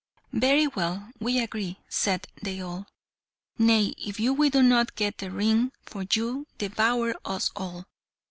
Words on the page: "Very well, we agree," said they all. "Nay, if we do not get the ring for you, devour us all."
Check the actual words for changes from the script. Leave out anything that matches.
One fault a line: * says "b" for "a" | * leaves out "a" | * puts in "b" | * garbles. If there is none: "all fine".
all fine